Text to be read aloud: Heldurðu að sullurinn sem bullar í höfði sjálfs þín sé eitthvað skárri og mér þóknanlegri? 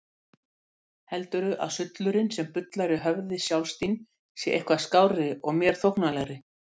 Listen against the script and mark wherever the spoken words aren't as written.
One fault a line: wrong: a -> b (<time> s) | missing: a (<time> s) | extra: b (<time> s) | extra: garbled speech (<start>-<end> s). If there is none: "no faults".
no faults